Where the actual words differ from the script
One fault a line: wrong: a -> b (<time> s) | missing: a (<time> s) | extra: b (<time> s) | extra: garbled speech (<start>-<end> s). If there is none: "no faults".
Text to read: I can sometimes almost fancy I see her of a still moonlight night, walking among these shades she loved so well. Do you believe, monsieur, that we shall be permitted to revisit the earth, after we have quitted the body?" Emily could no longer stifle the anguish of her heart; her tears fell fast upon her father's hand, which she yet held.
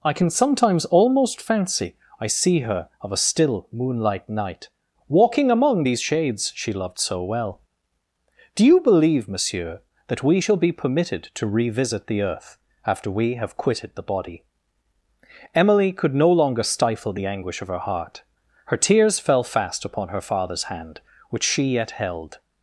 no faults